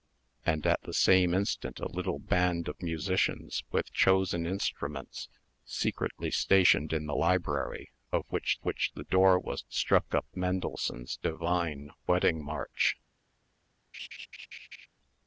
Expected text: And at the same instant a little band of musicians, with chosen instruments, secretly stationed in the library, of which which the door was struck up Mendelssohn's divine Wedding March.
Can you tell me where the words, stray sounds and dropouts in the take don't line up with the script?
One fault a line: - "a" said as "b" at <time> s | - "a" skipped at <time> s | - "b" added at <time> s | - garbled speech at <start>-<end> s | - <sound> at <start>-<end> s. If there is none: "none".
- laugh at 13.9-14.9 s